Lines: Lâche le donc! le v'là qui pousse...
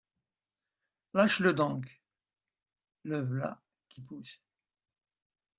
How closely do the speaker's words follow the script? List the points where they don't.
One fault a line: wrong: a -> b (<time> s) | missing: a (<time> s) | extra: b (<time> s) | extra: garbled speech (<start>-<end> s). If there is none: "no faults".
no faults